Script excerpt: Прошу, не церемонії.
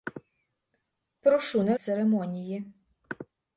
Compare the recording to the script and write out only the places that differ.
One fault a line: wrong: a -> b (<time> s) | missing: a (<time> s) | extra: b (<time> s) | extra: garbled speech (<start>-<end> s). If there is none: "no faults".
no faults